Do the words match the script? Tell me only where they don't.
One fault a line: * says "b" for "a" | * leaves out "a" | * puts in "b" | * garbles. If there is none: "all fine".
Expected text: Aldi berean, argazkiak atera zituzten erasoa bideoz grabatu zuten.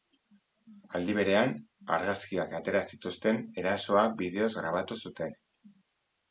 all fine